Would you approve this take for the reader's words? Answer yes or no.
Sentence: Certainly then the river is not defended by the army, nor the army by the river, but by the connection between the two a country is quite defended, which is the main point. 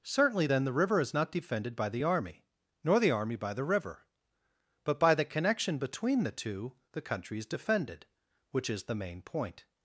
no